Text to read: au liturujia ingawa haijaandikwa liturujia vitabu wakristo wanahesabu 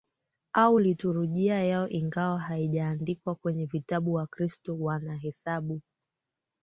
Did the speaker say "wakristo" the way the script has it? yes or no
yes